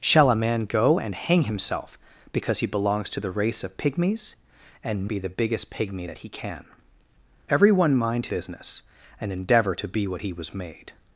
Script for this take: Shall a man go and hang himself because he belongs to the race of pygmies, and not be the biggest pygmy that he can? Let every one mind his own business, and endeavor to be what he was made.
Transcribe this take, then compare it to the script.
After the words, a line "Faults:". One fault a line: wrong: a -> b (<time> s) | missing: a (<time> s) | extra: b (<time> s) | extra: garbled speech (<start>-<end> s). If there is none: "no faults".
Shall a man go and hang himself because he belongs to the race of pygmies, and be the biggest pygmy that he can? Every one mind business, and endeavor to be what he was made.
Faults:
missing: not (5.1 s)
missing: Let (6.7 s)
missing: his own (8.3 s)